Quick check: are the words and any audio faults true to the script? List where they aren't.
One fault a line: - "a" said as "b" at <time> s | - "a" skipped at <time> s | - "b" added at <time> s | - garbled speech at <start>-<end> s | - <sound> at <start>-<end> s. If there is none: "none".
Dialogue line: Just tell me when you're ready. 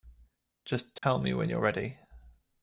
- dropout at 1.0-1.0 s